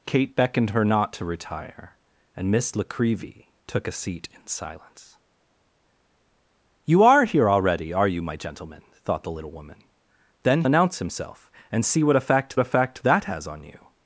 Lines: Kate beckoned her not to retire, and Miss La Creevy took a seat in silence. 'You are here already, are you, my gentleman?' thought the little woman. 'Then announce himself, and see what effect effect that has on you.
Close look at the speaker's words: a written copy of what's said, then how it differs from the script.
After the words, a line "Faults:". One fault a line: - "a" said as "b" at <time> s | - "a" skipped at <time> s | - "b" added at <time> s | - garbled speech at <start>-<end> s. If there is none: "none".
Kate beckoned her not to retire, and Miss La Creevy took a seat in silence. 'You are here already, are you, my gentleman?' thought the little woman. 'Then announce himself, and see what effect effect that has on you.
Faults:
none